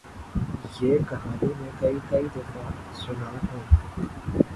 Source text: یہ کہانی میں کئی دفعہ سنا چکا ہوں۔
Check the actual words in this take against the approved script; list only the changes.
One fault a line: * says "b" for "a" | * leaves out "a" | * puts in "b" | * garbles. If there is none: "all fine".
* puts in "کئی"
* leaves out "چکا"